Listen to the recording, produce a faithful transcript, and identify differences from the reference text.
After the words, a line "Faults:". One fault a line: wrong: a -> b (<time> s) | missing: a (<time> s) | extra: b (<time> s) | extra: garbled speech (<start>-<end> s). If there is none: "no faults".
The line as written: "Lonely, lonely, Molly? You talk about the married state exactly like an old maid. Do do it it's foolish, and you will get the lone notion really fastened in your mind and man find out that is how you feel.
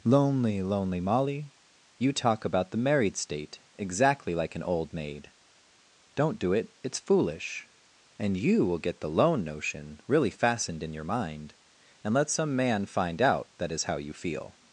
"Lonely, lonely, Molly? You talk about the married state exactly like an old maid. Don't do it it's foolish, and you will get the lone notion really fastened in your mind and let some man find out that is how you feel.
Faults:
wrong: Do -> Don't (6.2 s)
extra: let some (12.1 s)